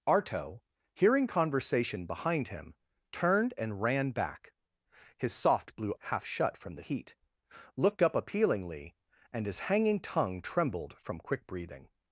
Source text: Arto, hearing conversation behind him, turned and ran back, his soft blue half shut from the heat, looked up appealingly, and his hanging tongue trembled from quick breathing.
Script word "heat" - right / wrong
right